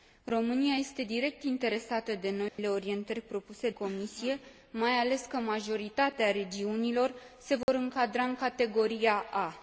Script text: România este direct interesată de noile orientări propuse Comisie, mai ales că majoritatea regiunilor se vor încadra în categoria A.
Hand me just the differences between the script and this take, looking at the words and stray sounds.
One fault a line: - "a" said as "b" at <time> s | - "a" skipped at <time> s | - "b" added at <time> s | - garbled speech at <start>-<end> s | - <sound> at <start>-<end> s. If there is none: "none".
- dropout at 2.5-2.6 s
- dropout at 7.6-7.7 s